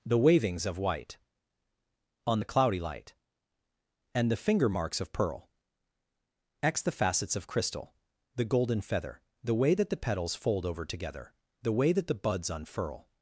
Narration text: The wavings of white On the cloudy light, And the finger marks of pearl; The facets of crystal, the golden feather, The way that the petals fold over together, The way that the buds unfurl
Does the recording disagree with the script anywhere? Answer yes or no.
yes